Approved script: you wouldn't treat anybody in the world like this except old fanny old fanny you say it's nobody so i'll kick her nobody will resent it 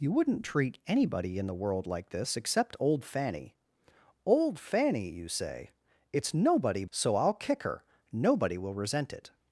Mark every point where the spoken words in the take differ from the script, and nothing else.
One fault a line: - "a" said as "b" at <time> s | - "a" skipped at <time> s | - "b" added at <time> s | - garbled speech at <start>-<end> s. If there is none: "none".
none